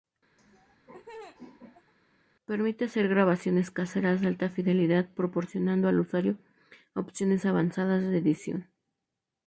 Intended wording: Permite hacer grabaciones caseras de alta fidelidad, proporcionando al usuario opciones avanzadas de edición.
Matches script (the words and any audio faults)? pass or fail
fail